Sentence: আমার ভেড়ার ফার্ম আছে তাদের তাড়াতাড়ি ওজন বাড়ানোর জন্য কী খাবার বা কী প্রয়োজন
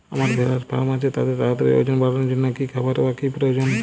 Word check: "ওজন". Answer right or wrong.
right